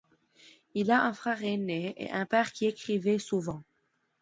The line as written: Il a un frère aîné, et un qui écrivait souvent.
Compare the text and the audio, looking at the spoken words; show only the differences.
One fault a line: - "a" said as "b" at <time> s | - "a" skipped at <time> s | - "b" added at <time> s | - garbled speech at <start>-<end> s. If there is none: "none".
- "père" added at 2.2 s